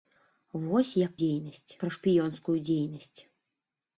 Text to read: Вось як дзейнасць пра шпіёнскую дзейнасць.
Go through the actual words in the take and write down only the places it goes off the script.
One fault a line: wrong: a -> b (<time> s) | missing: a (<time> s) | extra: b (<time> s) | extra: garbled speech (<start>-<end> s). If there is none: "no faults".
no faults